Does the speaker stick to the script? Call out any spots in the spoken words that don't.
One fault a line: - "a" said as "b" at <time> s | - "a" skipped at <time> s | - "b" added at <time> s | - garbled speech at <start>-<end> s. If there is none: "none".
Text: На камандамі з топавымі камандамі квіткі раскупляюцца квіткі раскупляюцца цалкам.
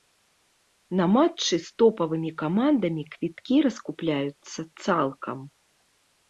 - "камандамі" said as "матчы" at 1.1 s
- "квіткі раскупляюцца" skipped at 4.6 s